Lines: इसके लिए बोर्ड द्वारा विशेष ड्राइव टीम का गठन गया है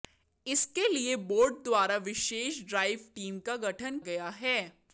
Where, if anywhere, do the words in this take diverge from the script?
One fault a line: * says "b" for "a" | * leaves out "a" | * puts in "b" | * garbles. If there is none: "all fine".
all fine